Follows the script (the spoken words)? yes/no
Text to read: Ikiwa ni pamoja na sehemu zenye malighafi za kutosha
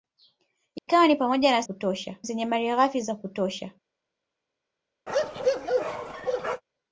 no